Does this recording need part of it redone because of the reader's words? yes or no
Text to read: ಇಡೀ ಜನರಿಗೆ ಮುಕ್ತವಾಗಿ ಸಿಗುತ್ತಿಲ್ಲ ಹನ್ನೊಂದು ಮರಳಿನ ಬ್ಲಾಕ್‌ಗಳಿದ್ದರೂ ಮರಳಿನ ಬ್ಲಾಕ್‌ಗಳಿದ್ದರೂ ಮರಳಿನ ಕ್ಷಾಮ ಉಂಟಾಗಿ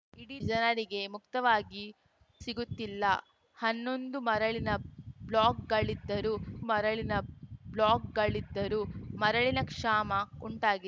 no